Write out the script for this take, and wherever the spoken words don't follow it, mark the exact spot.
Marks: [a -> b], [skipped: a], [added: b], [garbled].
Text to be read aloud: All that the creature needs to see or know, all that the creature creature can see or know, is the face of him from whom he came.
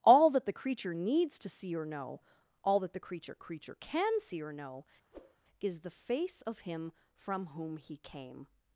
All that the creature needs to see or know, all that the creature creature can see or know, is the face of him from whom he came.